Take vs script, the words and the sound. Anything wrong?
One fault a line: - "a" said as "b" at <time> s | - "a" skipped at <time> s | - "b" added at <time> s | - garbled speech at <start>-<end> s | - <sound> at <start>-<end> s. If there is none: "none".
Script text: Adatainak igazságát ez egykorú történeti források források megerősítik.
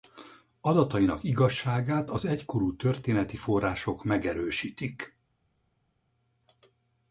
- "ez" said as "az" at 2.1 s
- "források" skipped at 4.0 s